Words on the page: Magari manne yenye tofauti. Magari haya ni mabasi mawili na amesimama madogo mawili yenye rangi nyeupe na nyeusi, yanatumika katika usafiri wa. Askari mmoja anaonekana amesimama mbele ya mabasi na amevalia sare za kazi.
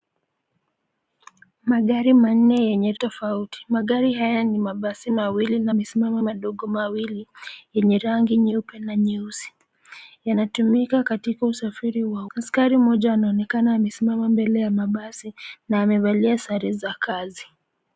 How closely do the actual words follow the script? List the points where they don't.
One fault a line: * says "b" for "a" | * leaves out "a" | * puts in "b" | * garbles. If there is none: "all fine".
all fine